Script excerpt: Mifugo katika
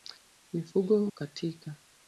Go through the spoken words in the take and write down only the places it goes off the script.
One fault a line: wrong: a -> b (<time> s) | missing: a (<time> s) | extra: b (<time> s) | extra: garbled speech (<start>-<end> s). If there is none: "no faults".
no faults